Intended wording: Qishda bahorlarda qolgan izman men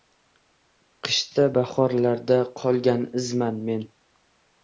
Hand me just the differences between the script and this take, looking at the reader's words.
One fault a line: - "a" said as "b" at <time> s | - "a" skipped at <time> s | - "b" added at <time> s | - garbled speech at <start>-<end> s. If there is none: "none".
none